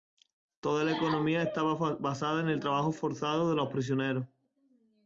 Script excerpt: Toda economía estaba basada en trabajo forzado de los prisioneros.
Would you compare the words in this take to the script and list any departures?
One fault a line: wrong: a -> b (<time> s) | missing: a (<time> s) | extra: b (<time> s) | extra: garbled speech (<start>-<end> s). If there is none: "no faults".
extra: la (0.8 s)
extra: el (2.5 s)